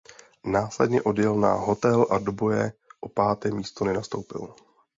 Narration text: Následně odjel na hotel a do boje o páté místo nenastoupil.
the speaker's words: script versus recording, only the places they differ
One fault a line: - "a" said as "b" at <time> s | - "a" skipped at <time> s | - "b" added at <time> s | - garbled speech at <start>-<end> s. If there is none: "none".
none